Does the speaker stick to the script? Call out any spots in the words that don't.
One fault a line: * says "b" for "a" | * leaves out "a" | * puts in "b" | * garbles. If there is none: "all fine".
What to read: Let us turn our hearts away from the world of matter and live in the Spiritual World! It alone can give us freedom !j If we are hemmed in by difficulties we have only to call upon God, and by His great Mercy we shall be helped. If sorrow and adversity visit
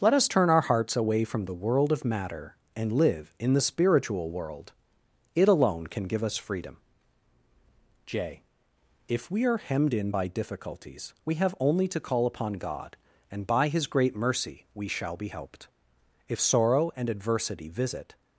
all fine